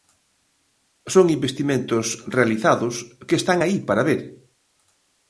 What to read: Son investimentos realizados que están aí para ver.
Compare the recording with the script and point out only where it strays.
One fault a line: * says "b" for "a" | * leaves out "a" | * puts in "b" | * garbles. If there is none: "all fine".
all fine